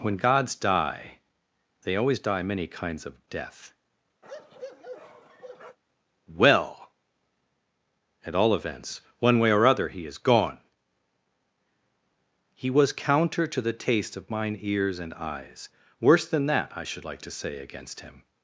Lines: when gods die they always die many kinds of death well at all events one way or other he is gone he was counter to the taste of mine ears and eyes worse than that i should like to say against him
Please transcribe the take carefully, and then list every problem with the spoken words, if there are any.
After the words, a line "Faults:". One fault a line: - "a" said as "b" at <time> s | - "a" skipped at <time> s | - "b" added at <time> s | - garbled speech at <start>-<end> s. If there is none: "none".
when gods die they always die many kinds of death well at all events one way or other he is gone he was counter to the taste of mine ears and eyes worse than that i should like to say against him
Faults:
none